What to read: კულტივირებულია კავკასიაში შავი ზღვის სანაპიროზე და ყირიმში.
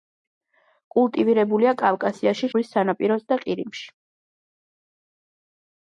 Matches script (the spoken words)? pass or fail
fail